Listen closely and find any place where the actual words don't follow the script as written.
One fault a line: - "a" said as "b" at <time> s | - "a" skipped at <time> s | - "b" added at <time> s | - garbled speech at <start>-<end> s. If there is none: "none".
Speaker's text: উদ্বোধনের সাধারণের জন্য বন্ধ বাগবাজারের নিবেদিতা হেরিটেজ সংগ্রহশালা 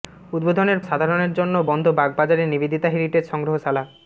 none